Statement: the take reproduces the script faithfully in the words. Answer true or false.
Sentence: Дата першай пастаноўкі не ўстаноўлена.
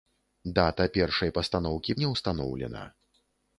true